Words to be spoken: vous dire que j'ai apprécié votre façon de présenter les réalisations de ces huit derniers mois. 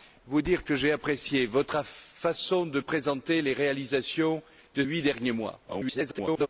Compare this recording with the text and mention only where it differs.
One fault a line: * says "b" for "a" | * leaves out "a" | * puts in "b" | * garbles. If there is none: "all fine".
* leaves out "ces"
* garbles